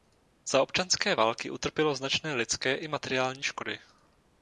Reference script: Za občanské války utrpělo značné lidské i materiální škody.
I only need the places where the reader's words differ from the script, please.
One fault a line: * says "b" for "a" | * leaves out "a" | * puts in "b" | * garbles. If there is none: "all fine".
all fine